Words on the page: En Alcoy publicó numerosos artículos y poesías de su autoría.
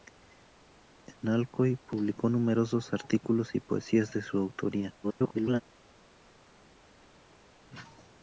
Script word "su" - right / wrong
right